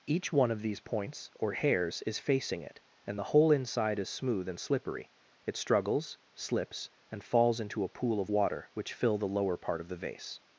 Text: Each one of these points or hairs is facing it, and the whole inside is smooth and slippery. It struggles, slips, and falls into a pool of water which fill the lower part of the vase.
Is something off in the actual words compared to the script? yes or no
no